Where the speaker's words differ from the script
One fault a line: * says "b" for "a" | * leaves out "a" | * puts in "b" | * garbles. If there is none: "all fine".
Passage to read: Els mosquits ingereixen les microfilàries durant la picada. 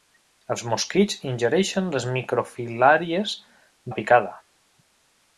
* leaves out "durant"